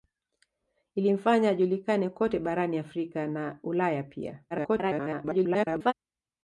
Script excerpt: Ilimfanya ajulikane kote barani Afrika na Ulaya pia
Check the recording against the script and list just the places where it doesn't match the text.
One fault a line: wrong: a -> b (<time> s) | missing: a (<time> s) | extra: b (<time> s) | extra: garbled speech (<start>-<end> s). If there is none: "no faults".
extra: garbled speech (4.5-5.9 s)